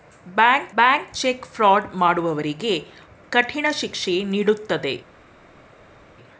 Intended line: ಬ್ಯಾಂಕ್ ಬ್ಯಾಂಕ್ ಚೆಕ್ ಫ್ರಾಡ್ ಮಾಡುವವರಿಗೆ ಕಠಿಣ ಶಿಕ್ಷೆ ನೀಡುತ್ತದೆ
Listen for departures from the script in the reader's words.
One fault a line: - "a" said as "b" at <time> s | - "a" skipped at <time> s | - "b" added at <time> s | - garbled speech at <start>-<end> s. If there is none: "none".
none